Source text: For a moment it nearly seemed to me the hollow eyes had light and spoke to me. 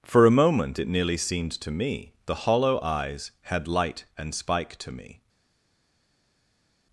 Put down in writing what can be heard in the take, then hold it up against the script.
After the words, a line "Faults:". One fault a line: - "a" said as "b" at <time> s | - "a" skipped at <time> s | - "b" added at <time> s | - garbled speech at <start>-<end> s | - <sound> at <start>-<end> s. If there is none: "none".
For a moment it nearly seemed to me the hollow eyes had light and spike to me.
Faults:
- "spoke" said as "spike" at 4.3 s